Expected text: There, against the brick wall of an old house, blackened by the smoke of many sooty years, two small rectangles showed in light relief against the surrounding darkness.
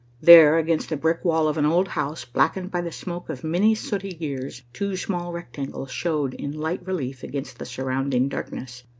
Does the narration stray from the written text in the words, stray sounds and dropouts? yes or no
no